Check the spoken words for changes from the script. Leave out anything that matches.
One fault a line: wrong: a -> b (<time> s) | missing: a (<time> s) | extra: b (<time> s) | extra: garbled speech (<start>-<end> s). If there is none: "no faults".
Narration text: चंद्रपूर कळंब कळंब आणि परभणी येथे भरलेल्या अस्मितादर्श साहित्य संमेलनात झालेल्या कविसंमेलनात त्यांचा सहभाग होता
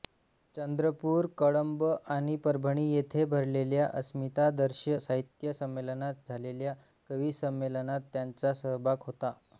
missing: कळंब (1.8 s)